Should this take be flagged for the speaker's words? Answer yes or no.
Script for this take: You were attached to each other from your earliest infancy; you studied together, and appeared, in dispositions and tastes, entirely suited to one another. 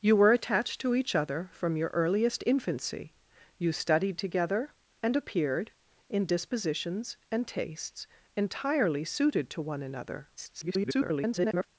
yes